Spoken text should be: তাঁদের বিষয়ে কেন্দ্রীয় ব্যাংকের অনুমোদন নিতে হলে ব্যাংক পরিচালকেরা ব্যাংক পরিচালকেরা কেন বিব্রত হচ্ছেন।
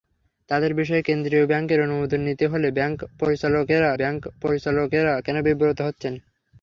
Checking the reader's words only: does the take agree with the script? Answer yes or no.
yes